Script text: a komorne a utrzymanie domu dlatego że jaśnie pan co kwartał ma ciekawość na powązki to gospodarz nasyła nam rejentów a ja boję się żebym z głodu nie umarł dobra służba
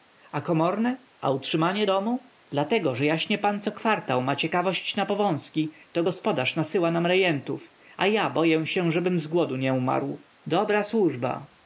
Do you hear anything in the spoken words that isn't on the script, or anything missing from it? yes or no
no